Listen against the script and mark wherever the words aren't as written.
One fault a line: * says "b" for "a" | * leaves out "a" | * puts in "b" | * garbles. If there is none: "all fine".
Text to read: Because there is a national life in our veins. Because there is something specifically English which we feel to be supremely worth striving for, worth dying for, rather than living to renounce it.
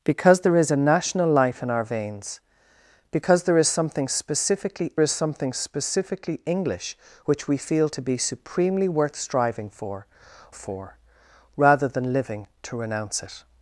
* puts in "is something specifically"
* leaves out "worth dying"